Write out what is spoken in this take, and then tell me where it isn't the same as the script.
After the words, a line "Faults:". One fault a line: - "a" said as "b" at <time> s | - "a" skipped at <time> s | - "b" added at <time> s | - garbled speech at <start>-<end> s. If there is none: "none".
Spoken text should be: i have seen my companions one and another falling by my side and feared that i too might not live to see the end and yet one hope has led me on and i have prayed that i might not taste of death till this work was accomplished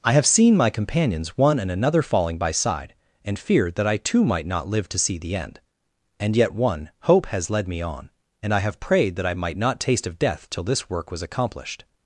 i have seen my companions one and another falling by side and feared that i too might not live to see the end and yet one hope has led me on and i have prayed that i might not taste of death till this work was accomplished
Faults:
- "my" skipped at 2.5 s